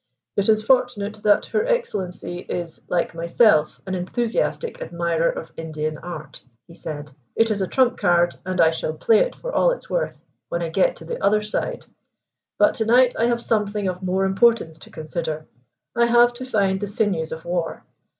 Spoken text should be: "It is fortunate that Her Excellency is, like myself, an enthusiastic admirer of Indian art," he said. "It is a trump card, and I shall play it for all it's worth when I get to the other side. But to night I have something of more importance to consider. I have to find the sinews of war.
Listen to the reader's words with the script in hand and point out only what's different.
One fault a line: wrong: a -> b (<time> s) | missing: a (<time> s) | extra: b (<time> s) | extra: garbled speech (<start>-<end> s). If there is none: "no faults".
no faults